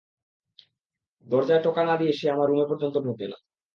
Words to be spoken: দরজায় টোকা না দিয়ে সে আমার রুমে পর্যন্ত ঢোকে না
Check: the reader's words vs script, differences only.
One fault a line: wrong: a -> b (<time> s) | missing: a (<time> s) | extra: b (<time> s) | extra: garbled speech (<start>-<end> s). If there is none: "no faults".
no faults